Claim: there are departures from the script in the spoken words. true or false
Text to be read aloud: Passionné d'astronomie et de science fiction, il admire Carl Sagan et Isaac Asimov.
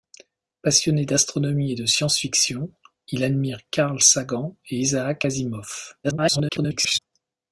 true